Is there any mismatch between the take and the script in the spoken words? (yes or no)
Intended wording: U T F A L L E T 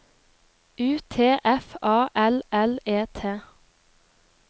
no